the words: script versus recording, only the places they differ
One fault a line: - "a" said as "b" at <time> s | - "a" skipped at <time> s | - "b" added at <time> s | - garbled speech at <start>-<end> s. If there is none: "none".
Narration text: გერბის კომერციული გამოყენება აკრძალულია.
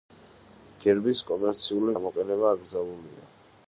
none